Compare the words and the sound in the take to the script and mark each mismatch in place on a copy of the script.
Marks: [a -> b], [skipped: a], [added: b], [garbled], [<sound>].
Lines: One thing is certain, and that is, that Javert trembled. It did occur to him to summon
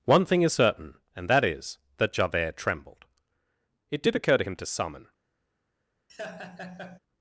One thing is certain, and that is, that Javert trembled. It did occur to him to summon [laugh]